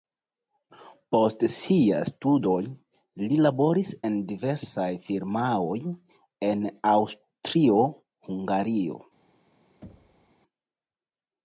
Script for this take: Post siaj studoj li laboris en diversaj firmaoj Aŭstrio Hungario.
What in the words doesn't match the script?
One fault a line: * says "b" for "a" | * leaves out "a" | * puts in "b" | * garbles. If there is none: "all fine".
* puts in "en"